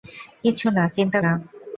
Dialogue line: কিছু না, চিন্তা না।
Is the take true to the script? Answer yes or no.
yes